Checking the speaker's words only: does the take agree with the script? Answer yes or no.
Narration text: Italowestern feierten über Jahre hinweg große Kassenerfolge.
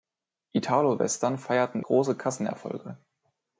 no